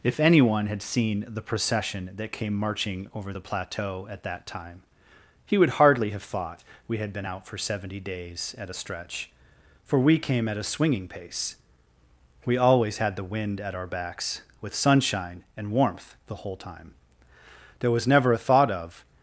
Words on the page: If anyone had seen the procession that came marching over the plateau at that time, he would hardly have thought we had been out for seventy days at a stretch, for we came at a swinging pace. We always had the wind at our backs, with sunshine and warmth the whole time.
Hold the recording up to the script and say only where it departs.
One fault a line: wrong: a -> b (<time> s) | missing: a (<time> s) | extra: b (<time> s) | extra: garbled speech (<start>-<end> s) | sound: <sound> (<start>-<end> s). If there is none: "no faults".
extra: There was never a thought of (17.8 s)